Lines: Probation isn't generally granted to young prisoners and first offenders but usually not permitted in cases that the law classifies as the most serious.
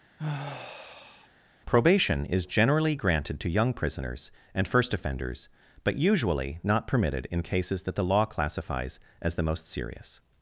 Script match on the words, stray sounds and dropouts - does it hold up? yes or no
no